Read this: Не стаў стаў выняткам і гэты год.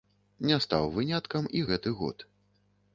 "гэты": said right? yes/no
yes